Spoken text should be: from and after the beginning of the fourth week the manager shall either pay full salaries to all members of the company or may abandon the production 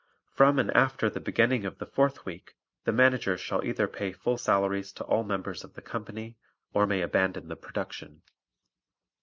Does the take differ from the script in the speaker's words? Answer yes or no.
no